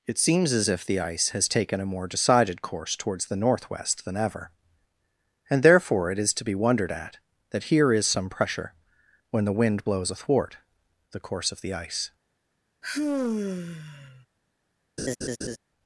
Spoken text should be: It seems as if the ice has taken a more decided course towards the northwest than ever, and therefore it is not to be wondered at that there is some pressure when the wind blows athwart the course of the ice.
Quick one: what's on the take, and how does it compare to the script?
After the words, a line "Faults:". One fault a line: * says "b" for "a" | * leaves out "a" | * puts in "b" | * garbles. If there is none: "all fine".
It seems as if the ice has taken a more decided course towards the northwest than ever, and therefore it is to be wondered at that here is some pressure when the wind blows athwart the course of the ice.
Faults:
* leaves out "not"
* says "here" for "there"